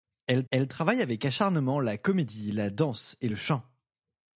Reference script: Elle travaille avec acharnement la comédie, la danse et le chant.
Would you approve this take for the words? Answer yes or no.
no